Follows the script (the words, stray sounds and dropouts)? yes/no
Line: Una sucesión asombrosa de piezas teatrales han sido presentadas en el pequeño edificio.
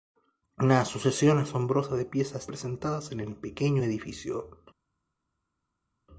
no